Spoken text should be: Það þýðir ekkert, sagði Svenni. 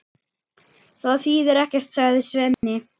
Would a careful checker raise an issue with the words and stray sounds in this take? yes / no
yes